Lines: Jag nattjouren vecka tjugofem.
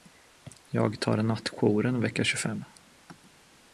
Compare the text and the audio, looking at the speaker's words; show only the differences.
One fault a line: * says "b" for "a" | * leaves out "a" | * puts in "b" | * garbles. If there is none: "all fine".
* puts in "tar"